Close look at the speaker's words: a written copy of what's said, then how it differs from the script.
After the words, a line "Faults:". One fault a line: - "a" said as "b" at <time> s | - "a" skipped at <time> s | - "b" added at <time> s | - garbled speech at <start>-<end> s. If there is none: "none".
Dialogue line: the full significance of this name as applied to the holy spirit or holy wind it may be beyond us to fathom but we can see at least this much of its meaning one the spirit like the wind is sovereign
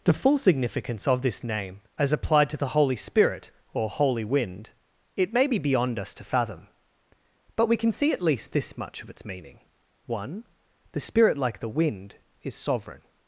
the full significance of this name as applied to the holy spirit or holy wind it may be beyond us to fathom but we can see at least this much of its meaning one the spirit like the wind is sovereign
Faults:
none